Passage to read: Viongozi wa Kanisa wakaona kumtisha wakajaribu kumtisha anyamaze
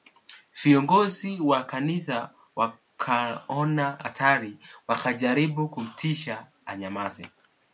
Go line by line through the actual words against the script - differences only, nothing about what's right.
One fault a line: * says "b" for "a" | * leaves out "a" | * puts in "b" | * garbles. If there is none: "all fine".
* says "hatari" for "kumtisha"